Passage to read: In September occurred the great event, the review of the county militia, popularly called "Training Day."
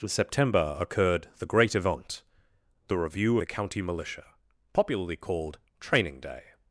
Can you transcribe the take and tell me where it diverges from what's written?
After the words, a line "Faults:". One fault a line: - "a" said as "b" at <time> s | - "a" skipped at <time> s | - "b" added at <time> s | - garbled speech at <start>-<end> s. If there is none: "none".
In September occurred the great event, the review the county militia, popularly called "Training Day."
Faults:
- "of" skipped at 3.4 s